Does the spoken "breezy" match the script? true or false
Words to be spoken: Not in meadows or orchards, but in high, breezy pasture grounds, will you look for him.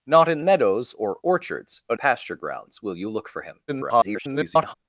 false